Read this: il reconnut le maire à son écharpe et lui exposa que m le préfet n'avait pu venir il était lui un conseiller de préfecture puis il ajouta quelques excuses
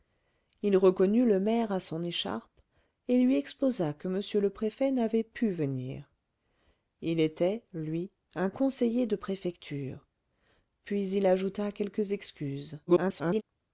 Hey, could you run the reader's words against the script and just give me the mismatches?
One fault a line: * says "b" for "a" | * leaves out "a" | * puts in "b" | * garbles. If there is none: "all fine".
* garbles